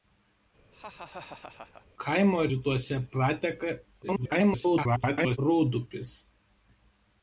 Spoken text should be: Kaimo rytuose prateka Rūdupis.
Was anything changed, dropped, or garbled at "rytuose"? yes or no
no